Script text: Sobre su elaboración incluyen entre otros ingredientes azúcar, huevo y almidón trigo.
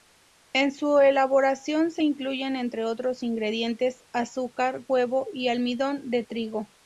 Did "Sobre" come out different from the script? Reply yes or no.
yes